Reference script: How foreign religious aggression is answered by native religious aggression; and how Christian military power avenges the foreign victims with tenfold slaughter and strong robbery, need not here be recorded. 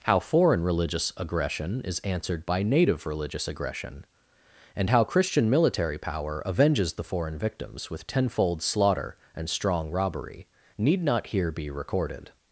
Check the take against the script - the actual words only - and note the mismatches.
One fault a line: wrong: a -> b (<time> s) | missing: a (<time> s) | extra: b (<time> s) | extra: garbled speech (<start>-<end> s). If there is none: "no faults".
no faults